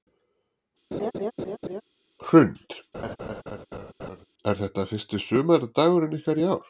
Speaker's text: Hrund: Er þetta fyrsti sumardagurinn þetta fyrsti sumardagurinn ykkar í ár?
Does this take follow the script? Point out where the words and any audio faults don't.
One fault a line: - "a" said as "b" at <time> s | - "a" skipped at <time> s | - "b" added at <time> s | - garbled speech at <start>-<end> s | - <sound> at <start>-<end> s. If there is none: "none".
- laugh at 0.9-1.8 s
- laugh at 2.9-4.2 s
- "þetta fyrsti sumardagurinn" skipped at 6.2 s